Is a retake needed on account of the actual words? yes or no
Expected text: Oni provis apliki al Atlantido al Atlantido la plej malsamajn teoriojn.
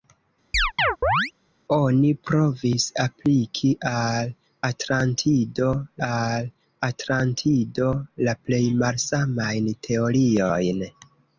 no